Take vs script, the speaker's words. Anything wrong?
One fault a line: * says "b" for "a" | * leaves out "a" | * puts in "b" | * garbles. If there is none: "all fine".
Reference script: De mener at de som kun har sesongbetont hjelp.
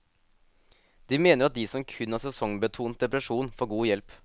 * puts in "depresjon får god"